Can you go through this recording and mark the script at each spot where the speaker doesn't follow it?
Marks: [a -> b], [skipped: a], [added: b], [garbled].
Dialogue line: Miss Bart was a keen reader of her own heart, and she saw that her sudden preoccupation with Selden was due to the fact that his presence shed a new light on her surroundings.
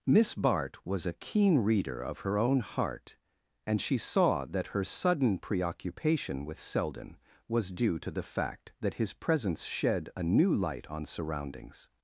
Miss Bart was a keen reader of her own heart, and she saw that her sudden preoccupation with Selden was due to the fact that his presence shed a new light on [skipped: her] surroundings.